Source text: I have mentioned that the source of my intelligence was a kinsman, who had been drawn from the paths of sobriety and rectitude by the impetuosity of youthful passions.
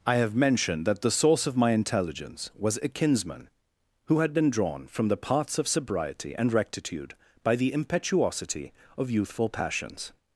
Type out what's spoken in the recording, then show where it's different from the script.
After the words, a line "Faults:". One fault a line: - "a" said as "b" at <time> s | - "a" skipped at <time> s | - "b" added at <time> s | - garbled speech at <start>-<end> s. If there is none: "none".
I have mentioned that the source of my intelligence was a kinsman, who had been drawn from the paths of sobriety and rectitude by the impetuosity of youthful passions.
Faults:
none